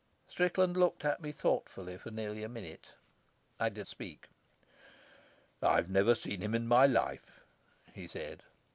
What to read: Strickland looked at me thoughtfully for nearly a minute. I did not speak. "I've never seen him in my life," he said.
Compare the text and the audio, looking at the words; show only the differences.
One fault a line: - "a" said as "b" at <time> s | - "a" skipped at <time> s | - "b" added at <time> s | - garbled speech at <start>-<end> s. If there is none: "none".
- "not" skipped at 3.9 s